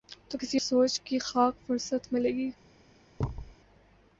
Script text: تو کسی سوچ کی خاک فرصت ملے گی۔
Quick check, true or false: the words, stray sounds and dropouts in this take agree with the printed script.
false